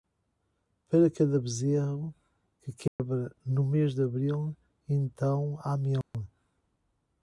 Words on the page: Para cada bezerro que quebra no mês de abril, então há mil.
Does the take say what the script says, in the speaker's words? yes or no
yes